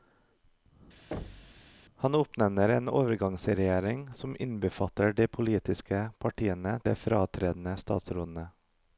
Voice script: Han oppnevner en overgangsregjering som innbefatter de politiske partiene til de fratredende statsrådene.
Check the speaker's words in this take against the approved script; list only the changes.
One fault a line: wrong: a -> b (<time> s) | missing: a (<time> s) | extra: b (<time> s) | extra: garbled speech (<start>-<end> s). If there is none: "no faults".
missing: til (6.8 s)